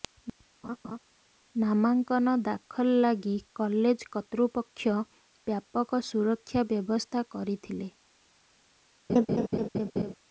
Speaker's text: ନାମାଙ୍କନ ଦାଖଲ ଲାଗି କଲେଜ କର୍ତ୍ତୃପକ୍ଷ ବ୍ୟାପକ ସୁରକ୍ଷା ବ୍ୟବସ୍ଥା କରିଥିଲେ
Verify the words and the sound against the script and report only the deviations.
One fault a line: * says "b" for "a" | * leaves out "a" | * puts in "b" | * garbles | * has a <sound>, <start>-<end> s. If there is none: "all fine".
* has a laugh, 0.6-1.0 s
* has a laugh, 9.1-10.1 s